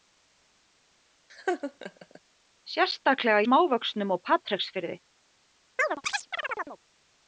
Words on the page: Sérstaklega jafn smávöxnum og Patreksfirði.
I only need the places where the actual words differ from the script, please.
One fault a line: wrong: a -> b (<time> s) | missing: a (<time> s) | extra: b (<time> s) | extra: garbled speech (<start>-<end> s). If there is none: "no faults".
missing: jafn (3.4 s)